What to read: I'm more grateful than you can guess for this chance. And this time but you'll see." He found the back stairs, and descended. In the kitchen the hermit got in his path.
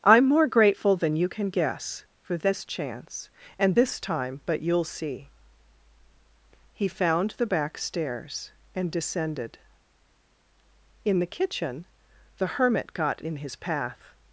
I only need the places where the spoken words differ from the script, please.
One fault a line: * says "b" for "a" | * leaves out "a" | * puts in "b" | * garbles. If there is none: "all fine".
all fine